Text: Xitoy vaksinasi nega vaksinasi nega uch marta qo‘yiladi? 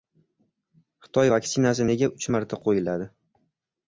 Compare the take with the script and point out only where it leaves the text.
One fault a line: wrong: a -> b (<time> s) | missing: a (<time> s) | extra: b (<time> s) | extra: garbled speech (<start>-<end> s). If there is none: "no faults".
missing: vaksinasi nega (2.1 s)